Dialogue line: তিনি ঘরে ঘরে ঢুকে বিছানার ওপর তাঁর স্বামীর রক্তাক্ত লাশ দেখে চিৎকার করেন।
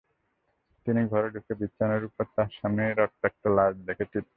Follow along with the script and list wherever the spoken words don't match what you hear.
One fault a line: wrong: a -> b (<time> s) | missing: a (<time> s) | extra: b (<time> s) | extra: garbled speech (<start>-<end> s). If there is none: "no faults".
missing: ঘরে (1.3 s)